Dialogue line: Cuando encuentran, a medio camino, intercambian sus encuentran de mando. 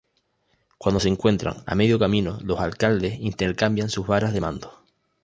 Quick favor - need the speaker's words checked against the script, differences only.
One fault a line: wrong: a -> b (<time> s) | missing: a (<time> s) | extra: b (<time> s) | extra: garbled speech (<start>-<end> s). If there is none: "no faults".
extra: se (1.0 s)
extra: los alcaldes (2.4 s)
wrong: encuentran -> varas (4.1 s)